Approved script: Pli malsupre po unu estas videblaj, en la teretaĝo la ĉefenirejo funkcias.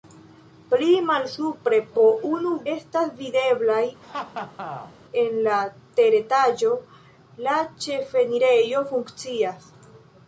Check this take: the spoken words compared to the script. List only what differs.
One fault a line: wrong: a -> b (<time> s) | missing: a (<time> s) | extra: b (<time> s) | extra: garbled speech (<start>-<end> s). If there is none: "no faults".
no faults